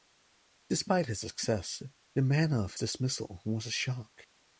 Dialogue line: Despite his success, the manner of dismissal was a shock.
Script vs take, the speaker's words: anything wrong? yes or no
no